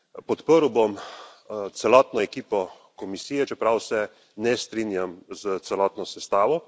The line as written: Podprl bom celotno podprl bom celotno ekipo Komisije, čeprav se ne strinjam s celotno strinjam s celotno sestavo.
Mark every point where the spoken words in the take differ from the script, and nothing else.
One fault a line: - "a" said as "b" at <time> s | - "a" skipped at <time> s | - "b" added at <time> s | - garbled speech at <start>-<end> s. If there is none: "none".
- "podprl bom celotno" skipped at 2.2 s
- "strinjam s celotno" skipped at 6.1 s